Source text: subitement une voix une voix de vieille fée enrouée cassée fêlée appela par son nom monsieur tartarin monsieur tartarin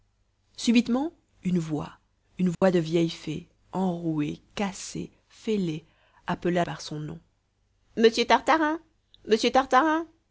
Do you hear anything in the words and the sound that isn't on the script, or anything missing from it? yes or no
yes